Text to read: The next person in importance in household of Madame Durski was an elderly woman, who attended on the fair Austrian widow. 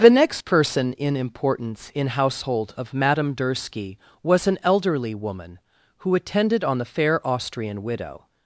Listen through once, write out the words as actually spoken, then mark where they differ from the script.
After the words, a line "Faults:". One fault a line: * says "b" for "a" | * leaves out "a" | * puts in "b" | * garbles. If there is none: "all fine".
The next person in importance in household of Madame Durski was an elderly woman, who attended on the fair Austrian widow.
Faults:
all fine